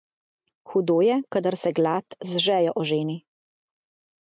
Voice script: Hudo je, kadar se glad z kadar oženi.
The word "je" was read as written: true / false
true